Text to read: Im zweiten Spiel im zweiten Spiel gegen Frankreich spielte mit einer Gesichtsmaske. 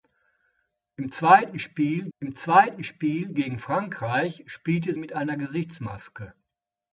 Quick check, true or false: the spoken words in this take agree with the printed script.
true